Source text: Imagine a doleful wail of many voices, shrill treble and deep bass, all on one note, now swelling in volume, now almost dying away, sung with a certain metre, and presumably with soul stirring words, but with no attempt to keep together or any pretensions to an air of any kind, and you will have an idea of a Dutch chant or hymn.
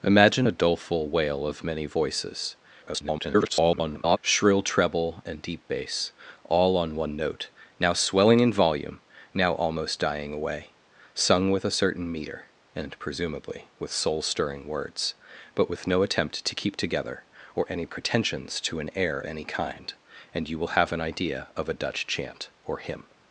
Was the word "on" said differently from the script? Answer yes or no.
no